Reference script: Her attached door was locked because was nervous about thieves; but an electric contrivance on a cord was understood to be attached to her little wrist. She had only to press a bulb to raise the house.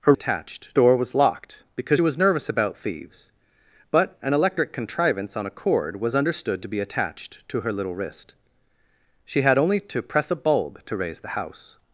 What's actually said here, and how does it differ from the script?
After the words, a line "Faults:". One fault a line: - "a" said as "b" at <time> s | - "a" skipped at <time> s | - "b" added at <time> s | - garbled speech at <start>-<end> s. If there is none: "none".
Her attached door was locked because was nervous about thieves; but an electric contrivance on a cord was understood to be attached to her little wrist. She had only to press a bulb to raise the house.
Faults:
none